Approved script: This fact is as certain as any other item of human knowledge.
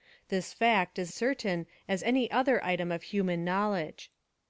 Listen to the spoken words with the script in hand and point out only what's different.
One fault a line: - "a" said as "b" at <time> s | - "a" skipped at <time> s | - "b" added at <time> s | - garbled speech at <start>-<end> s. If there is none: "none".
- "as" skipped at 1.1 s